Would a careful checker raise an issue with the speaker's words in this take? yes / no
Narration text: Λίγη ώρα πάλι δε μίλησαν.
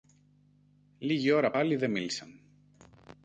no